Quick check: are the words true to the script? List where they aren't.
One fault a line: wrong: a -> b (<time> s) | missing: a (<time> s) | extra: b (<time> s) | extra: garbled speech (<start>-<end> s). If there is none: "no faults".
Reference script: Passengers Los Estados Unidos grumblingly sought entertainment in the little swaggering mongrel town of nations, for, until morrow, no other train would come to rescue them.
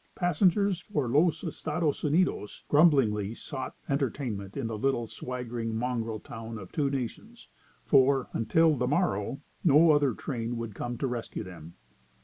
extra: for (0.8 s)
extra: two (6.7 s)
extra: the (8.8 s)